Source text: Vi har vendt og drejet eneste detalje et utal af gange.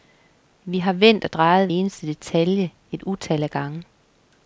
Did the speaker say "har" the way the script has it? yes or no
yes